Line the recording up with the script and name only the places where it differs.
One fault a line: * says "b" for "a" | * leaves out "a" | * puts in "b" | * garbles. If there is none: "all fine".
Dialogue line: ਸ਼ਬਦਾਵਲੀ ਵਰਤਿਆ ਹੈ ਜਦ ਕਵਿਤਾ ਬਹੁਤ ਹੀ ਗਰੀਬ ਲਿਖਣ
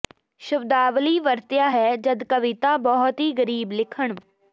all fine